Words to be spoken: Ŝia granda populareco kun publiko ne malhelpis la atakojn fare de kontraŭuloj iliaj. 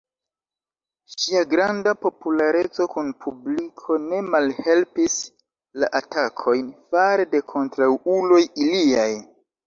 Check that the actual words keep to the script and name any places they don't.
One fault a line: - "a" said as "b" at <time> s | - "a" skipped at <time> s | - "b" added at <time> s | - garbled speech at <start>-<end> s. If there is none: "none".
none